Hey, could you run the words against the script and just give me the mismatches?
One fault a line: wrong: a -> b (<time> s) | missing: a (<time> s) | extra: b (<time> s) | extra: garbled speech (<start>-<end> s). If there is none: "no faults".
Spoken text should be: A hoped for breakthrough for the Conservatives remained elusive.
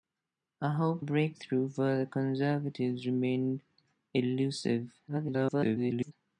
missing: for (1.1 s)
extra: garbled speech (5.1-6.1 s)